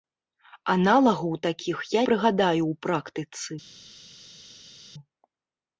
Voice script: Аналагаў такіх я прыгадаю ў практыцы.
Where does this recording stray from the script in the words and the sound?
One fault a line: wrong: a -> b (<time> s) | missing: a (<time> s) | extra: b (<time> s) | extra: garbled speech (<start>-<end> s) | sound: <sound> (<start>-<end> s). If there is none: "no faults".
no faults